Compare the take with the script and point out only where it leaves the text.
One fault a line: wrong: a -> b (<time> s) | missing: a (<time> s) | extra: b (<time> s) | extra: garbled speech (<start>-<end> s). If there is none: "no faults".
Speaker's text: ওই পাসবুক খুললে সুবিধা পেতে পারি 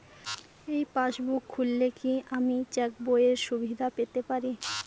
wrong: ওই -> এই (0.7 s)
extra: কি আমি চেকবইয়ের (2.0 s)